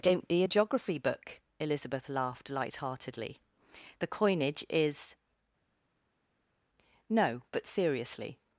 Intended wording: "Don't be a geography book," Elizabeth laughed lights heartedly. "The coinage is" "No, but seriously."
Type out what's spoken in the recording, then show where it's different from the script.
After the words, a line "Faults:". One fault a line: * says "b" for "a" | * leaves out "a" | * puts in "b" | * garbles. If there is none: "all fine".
"Don't be a geography book," Elizabeth laughed light heartedly. "The coinage is" "No, but seriously."
Faults:
* says "light" for "lights"